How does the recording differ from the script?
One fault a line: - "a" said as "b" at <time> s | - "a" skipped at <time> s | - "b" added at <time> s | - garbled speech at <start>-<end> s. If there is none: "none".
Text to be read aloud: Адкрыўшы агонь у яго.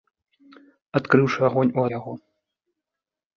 none